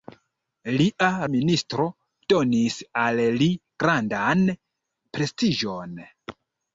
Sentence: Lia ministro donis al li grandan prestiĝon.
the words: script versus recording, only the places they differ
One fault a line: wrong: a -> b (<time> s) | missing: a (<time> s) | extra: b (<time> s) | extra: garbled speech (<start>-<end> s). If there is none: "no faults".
no faults